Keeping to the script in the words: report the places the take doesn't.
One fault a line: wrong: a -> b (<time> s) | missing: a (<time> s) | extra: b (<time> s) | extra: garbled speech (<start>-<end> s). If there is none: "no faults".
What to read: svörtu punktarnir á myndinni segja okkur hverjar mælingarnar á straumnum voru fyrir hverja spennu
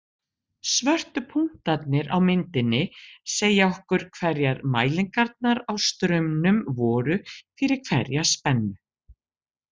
no faults